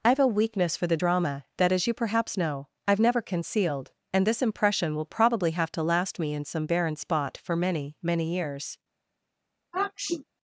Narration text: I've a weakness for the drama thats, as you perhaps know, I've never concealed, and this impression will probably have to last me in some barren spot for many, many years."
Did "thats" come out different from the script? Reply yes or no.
yes